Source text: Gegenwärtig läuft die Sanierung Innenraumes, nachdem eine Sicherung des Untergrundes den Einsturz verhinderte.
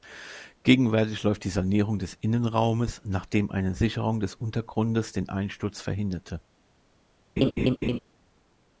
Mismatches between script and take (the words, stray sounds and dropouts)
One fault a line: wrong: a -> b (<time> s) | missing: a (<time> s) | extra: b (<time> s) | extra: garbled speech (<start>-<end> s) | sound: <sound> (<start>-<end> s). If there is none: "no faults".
extra: des (2.0 s)
sound: laugh (7.4-8.0 s)